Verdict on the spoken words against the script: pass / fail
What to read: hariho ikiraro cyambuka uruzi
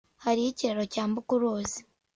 pass